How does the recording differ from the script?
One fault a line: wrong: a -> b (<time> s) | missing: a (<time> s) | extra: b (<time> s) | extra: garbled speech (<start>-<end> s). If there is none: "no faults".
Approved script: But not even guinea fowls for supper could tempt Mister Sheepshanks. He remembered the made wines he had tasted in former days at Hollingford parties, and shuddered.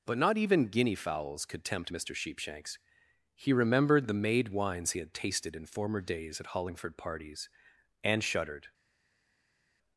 missing: for supper (1.4 s)